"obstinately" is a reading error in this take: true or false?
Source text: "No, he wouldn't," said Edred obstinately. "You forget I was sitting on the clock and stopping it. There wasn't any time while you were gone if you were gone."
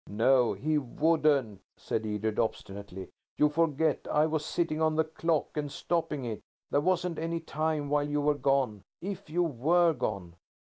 false